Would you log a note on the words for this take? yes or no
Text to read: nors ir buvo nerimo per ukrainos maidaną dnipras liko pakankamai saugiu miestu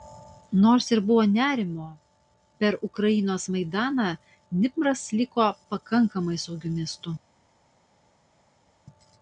no